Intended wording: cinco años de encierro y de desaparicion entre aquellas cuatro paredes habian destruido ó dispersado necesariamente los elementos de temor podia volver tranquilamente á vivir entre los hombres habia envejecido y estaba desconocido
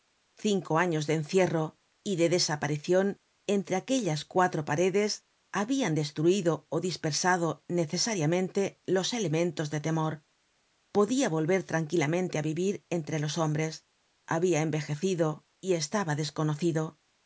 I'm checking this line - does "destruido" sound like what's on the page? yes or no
yes